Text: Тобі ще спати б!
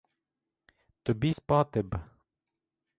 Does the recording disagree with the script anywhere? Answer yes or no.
yes